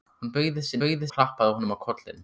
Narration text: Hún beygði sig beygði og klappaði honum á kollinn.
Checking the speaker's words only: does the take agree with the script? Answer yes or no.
yes